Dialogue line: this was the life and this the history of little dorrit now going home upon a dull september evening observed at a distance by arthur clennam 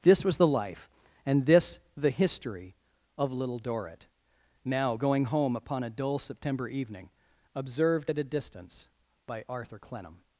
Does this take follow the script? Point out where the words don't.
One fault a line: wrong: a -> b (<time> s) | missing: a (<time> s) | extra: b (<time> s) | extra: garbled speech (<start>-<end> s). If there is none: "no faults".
no faults